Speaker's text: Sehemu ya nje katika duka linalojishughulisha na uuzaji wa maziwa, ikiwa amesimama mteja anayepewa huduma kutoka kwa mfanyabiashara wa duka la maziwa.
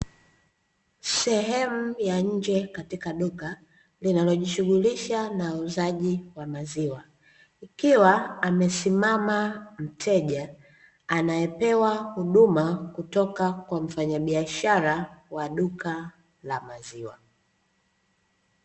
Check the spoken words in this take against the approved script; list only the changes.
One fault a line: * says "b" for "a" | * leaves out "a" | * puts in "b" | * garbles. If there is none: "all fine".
all fine